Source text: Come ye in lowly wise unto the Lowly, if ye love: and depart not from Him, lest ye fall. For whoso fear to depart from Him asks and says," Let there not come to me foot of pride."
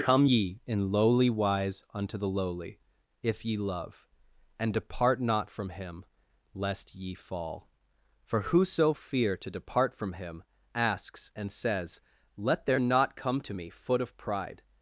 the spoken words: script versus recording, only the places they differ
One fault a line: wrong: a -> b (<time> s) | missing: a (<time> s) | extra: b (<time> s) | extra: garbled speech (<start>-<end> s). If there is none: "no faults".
no faults